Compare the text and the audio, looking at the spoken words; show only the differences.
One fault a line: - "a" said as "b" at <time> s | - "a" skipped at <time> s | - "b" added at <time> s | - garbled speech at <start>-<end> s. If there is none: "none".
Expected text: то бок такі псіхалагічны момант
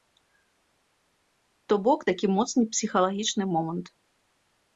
- "моцны" added at 2.4 s